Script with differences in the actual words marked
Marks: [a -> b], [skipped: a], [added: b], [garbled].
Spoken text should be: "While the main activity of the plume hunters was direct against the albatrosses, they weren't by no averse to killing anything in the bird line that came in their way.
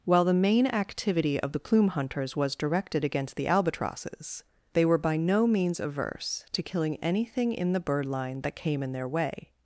"While the main activity of the plume hunters was [direct -> directed] against the albatrosses, they [weren't -> were] by no [added: means] averse to killing anything in the bird line that came in their way.